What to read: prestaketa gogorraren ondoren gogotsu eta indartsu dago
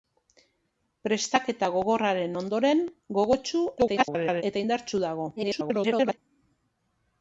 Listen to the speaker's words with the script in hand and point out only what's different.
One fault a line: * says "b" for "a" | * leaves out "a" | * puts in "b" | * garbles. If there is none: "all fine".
* garbles
* garbles